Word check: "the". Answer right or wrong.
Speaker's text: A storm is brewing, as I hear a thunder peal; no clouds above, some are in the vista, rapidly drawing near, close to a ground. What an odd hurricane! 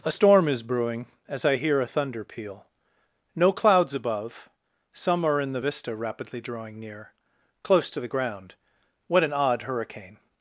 right